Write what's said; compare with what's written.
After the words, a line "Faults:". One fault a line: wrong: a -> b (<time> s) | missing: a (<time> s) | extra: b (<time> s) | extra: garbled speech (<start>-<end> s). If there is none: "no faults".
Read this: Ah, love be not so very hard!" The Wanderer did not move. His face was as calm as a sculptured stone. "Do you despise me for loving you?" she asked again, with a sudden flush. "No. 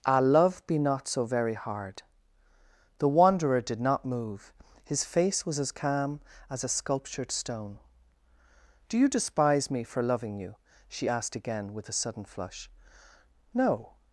Ah, love be not so very hard!" The Wanderer did not move. His face was as calm as a sculptured stone. "Do you despise me for loving you?" she asked again, with a sudden flush. "No.
Faults:
no faults